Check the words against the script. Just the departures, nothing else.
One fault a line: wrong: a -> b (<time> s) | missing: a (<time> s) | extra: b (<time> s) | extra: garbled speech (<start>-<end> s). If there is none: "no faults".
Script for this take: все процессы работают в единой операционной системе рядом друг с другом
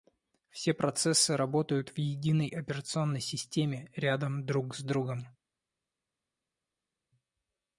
no faults